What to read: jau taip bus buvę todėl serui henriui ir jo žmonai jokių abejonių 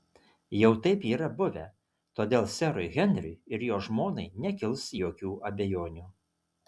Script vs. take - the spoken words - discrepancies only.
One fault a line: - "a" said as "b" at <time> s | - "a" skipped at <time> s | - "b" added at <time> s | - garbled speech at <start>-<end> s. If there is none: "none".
- "bus" said as "yra" at 1.1 s
- "nekils" added at 4.5 s